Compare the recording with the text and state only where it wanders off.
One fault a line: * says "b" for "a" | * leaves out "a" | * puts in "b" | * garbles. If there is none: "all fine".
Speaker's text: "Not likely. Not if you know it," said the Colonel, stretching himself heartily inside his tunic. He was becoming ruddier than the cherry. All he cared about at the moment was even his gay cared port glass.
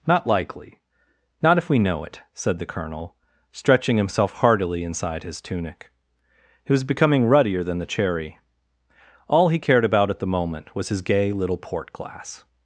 * says "we" for "you"
* leaves out "even"
* says "little" for "cared"